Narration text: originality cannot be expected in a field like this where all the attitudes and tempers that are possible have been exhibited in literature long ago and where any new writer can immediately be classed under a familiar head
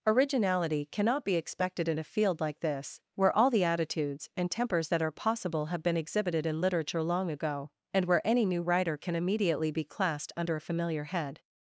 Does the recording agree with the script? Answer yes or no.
yes